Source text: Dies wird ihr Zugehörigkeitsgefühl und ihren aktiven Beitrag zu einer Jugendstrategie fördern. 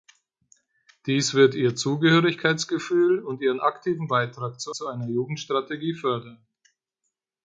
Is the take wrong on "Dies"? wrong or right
right